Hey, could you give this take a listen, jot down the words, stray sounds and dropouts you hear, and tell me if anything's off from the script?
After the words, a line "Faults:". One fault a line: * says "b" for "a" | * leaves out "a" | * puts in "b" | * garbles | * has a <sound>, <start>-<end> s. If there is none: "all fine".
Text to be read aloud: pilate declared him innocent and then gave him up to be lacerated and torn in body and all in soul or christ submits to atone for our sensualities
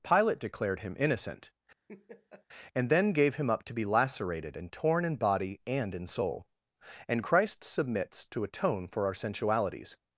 pilate declared him innocent and then gave him up to be lacerated and torn in body and in soul and christ submits to atone for our sensualities
Faults:
* has a laugh, 1.9-2.5 s
* leaves out "all"
* says "and" for "or"